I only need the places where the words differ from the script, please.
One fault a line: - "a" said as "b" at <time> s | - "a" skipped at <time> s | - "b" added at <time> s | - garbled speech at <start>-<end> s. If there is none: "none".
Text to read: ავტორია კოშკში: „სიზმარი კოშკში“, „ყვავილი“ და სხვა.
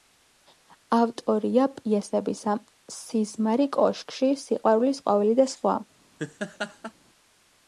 - "კოშკში" said as "პიესებისა" at 1.8 s
- "სიყვარულის" added at 4.5 s